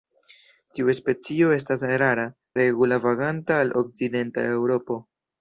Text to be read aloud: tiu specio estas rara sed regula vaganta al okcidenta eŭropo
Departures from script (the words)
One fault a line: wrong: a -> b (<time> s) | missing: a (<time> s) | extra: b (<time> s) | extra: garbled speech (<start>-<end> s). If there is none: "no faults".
missing: sed (2.2 s)